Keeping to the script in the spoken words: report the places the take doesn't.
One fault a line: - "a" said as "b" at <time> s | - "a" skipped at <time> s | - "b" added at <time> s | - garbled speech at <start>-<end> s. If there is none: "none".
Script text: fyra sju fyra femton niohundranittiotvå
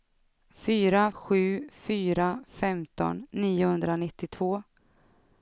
none